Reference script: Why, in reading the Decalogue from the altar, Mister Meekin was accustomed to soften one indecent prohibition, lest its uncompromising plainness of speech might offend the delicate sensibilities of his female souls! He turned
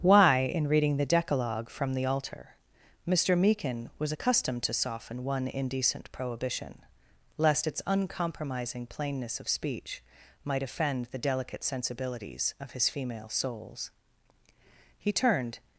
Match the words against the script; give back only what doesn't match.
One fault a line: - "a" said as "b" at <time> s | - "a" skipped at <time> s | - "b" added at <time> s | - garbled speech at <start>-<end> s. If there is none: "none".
none